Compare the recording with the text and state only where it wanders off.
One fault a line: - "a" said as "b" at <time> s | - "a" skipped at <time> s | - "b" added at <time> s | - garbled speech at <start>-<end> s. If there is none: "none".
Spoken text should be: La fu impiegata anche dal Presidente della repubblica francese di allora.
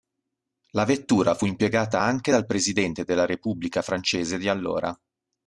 - "vettura" added at 0.8 s